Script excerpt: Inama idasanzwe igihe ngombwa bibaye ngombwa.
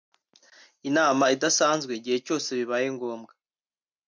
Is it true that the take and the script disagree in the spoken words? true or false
true